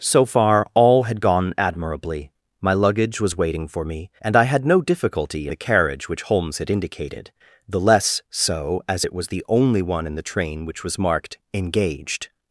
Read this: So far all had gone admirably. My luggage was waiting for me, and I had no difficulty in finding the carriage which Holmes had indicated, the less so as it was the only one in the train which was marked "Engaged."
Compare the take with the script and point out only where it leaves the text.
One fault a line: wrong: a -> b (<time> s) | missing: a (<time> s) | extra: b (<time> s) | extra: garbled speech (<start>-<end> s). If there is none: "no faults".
missing: in finding (5.5 s)